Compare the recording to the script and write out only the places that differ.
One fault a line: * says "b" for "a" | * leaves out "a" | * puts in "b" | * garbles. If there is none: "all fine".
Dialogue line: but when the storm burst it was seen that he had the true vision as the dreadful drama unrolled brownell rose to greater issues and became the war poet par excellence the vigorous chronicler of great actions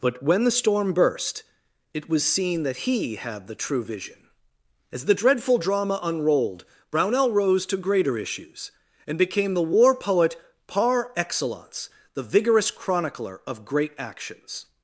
all fine